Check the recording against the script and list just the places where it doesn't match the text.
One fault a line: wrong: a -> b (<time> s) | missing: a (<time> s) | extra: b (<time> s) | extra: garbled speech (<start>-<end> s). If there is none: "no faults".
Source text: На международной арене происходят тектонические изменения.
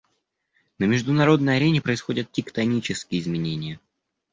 no faults